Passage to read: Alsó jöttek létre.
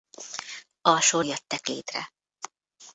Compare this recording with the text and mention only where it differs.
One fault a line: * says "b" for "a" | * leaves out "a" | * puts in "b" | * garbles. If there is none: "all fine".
all fine